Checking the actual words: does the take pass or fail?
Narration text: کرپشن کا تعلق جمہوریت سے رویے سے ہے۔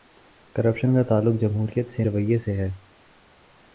pass